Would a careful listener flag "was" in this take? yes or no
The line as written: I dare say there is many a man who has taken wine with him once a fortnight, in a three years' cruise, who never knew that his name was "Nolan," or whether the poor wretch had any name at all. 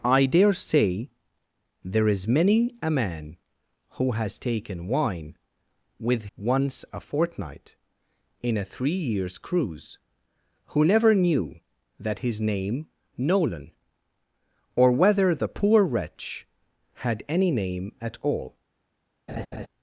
yes